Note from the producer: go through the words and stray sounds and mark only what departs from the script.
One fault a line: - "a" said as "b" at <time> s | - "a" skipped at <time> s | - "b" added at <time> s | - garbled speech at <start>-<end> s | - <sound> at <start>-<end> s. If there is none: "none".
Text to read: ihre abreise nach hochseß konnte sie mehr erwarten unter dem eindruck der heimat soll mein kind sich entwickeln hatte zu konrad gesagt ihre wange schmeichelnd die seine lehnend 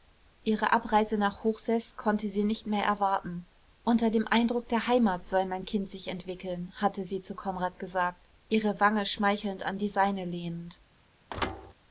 - "nicht" added at 2.4 s
- "sie" added at 7.0 s
- "an" added at 9.6 s
- thud at 11.3-11.7 s